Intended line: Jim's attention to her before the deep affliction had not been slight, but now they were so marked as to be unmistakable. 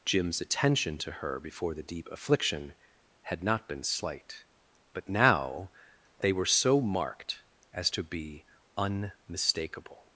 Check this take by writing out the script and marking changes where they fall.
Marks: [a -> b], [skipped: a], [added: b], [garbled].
Jim's attention to her before the deep affliction had not been slight, but now they were so marked as to be unmistakable.